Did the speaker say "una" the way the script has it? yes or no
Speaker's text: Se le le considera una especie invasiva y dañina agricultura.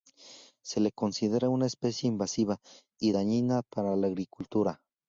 yes